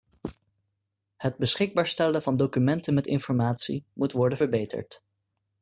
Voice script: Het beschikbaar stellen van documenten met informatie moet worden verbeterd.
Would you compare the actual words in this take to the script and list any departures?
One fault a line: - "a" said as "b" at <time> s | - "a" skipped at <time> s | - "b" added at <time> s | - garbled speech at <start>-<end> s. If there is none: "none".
none